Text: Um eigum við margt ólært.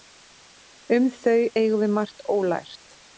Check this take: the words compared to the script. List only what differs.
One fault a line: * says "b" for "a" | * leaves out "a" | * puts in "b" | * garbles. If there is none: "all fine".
* puts in "þau"